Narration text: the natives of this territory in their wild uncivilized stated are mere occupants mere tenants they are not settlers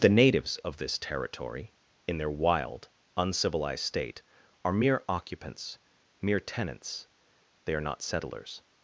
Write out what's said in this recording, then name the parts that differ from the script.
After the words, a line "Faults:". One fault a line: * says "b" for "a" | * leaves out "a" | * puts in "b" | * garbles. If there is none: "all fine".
the natives of this territory in their wild uncivilized state are mere occupants mere tenants they are not settlers
Faults:
* says "state" for "stated"